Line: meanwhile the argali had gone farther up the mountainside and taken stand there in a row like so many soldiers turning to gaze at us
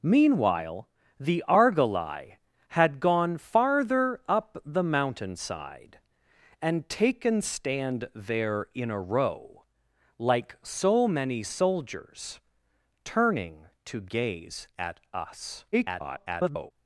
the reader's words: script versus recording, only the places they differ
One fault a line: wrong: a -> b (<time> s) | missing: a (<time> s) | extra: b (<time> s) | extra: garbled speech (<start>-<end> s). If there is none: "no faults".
extra: garbled speech (15.7-16.7 s)